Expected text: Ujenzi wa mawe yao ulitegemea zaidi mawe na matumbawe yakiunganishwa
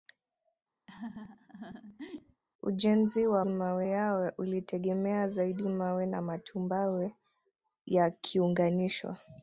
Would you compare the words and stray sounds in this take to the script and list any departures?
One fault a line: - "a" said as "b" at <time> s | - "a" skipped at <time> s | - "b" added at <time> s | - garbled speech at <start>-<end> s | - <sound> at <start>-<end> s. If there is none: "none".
- laugh at 0.9-2.4 s